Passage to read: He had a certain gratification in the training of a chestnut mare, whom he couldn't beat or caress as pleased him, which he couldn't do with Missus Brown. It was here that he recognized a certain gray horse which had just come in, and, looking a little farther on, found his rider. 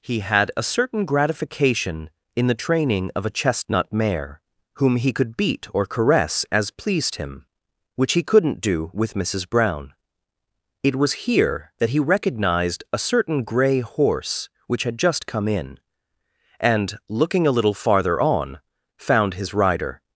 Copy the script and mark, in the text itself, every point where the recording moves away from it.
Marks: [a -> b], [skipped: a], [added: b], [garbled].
He had a certain gratification in the training of a chestnut mare, whom he [couldn't -> could] beat or caress as pleased him, which he couldn't do with Missus Brown. It was here that he recognized a certain gray horse which had just come in, and, looking a little farther on, found his rider.